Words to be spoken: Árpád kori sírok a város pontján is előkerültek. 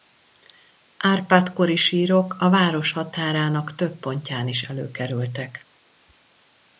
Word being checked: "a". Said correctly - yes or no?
yes